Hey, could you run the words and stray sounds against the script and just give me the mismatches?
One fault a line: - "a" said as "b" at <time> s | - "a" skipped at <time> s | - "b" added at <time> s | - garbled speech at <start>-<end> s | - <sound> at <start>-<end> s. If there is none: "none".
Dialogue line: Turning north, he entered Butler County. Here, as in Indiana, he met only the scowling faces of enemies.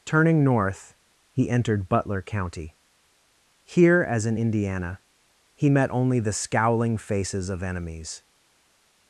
none